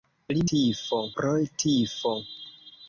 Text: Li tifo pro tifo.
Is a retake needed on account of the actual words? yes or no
no